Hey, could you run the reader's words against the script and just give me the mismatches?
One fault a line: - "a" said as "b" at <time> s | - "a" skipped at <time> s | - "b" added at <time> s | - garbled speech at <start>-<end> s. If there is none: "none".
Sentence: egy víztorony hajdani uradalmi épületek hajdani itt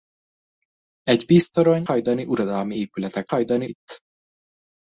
none